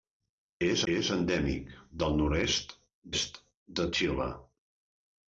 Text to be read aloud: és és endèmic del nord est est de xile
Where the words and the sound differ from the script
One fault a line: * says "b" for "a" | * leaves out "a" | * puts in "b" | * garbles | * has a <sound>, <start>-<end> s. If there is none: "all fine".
all fine